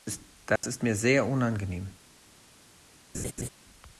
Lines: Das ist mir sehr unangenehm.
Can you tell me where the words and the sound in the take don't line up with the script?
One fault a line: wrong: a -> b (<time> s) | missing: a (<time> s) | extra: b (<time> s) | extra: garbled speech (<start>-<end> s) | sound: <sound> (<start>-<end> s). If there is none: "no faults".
sound: dropout (0.6-0.6 s)
sound: laugh (3.1-3.5 s)